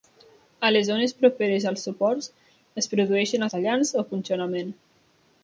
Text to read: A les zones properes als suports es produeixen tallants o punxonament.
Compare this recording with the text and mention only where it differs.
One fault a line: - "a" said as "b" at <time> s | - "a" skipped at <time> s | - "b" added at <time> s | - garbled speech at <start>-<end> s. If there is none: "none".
none